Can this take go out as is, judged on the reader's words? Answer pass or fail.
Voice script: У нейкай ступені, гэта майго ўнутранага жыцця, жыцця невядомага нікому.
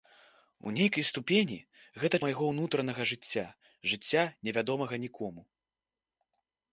pass